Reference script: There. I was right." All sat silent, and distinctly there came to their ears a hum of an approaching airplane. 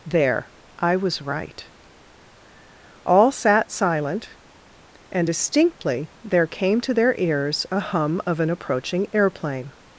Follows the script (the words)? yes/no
yes